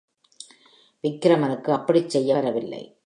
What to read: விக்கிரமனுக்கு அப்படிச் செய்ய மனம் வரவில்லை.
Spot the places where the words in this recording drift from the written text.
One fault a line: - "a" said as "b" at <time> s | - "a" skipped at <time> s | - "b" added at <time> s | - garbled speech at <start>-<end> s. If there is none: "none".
- "மனம்" skipped at 2.4 s